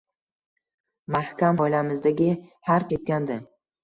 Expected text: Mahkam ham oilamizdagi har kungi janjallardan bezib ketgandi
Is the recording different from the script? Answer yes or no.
yes